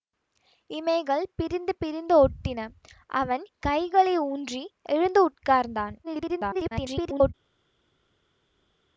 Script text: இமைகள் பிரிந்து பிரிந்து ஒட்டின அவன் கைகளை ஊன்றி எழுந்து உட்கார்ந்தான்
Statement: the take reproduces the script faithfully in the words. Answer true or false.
false